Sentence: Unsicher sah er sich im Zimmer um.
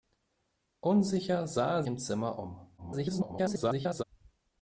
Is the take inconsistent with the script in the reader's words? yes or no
yes